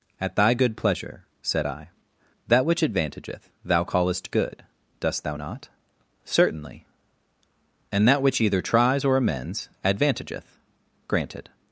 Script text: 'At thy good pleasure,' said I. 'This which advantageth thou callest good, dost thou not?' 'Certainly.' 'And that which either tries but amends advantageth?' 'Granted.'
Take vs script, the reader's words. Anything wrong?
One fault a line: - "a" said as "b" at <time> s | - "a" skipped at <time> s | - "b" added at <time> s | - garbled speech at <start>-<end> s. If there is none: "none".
- "This" said as "That" at 2.5 s
- "but" said as "or" at 9.0 s